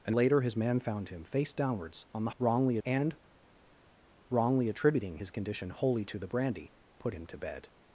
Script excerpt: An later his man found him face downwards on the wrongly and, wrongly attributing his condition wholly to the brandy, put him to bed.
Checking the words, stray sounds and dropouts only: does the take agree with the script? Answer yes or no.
yes